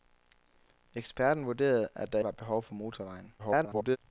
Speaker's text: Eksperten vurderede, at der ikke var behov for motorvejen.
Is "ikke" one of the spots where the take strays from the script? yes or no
yes